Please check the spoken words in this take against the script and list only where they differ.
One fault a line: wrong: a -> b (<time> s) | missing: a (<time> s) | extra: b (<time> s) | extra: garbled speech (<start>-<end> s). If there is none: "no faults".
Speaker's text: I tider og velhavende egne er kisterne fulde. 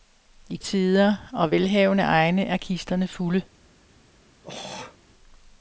no faults